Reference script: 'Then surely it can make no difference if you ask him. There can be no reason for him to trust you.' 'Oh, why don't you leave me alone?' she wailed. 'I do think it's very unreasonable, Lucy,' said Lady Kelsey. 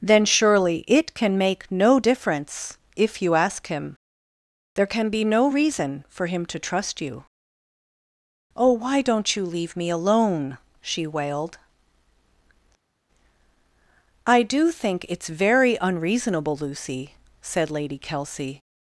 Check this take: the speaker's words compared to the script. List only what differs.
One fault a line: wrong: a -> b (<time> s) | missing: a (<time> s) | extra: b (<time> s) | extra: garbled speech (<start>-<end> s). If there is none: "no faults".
no faults